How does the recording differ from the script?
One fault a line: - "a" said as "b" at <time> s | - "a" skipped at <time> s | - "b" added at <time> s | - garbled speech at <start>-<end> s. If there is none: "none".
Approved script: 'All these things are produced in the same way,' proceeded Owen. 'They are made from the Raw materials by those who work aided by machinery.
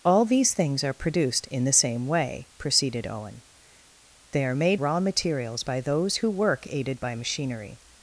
- "from the" skipped at 4.8 s